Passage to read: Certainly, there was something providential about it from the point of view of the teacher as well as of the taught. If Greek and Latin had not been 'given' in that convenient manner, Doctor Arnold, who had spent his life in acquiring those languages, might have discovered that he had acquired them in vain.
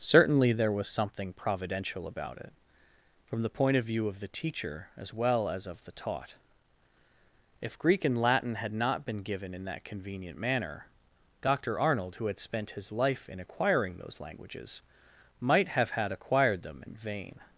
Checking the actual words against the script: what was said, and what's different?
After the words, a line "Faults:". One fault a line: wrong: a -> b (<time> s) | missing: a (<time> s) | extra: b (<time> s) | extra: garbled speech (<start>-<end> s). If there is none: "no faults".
Certainly, there was something providential about it from the point of view of the teacher as well as of the taught. If Greek and Latin had not been 'given' in that convenient manner, Doctor Arnold, who had spent his life in acquiring those languages, might have had acquired them in vain.
Faults:
missing: discovered that he (15.9 s)